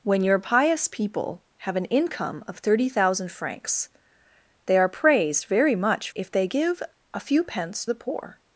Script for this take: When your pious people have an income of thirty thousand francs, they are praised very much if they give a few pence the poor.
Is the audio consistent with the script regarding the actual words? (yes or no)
yes